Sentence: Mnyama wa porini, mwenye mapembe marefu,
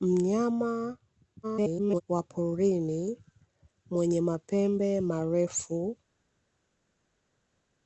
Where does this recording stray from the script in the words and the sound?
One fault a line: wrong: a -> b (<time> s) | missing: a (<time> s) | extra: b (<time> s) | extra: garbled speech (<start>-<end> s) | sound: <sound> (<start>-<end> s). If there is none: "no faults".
extra: garbled speech (1.4-2.0 s)